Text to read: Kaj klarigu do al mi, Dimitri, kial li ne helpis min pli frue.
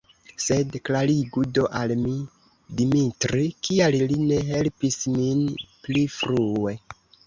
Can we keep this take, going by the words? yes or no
no